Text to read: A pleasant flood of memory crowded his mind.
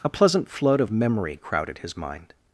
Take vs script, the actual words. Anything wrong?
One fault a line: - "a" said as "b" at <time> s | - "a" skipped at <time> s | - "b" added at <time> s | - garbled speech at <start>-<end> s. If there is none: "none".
none